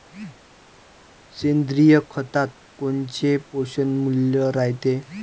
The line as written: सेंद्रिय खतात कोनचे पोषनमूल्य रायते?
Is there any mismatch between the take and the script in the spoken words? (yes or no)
no